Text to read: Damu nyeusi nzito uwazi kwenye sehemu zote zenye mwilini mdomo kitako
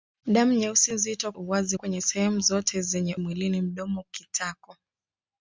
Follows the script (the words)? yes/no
yes